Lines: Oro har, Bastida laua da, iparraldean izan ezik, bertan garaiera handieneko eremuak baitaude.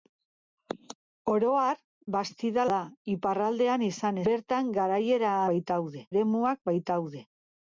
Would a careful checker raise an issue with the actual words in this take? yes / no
yes